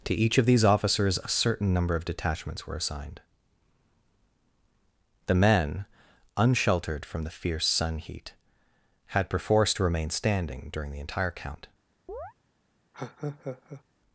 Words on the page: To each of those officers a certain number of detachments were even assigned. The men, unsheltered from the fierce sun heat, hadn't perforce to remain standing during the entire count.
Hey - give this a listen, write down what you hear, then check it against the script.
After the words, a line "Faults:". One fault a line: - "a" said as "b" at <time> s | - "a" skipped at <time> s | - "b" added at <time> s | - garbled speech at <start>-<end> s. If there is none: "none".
To each of these officers a certain number of detachments were assigned. The men, unsheltered from the fierce sun heat, had perforce to remain standing during the entire count.
Faults:
- "those" said as "these" at 0.5 s
- "even" skipped at 2.8 s
- "hadn't" said as "had" at 9.1 s